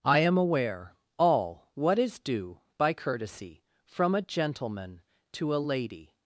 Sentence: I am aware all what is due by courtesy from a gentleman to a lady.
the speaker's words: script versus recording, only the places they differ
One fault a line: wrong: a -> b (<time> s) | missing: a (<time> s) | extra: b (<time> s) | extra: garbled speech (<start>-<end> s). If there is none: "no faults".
no faults